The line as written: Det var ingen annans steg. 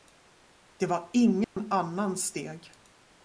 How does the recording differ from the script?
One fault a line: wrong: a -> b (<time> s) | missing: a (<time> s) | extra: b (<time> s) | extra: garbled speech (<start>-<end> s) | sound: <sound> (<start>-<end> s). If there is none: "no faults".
sound: dropout (1.4-1.6 s)